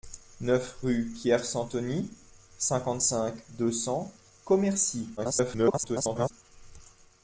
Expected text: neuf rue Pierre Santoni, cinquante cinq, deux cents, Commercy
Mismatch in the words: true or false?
true